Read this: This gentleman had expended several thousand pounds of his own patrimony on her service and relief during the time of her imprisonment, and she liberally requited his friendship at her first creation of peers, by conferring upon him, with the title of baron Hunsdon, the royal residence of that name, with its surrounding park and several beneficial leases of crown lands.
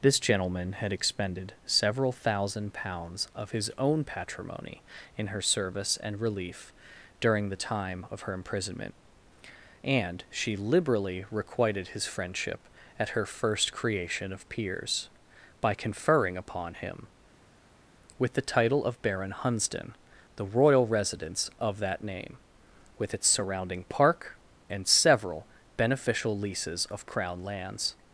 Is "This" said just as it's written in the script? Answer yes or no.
yes